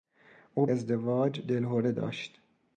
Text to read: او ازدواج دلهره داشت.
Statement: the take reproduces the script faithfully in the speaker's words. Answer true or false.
true